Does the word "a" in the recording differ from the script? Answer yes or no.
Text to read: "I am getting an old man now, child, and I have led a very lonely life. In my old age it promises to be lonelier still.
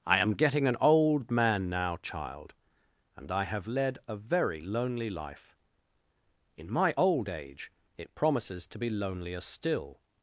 no